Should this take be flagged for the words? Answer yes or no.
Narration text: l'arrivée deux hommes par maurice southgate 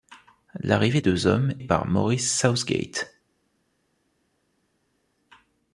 no